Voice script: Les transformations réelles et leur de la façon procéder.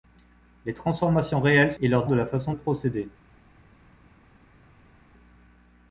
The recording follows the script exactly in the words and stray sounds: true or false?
true